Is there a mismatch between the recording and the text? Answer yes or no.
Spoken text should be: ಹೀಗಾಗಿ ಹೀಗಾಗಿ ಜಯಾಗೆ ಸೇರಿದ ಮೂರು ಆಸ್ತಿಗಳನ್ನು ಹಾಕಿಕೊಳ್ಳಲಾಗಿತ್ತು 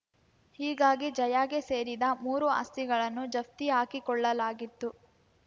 yes